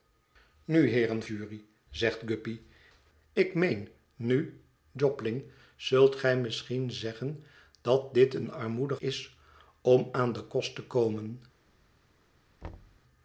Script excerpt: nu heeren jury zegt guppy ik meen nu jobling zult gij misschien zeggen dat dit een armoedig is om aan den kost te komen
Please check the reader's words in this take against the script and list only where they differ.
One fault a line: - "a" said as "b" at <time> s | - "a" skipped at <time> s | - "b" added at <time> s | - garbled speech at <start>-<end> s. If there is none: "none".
none